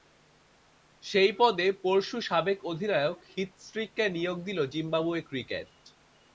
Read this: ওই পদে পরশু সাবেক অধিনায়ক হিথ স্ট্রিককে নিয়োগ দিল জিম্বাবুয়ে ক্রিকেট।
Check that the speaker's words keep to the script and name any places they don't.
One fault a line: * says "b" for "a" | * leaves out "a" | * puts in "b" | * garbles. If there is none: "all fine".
* says "সেই" for "ওই"